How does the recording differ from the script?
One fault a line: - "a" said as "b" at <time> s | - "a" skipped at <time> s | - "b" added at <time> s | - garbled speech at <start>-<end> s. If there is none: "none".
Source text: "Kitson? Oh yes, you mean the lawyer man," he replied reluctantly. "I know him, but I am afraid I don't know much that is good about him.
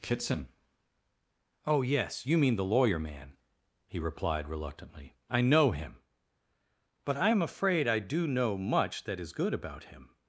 - "don't" said as "do" at 8.0 s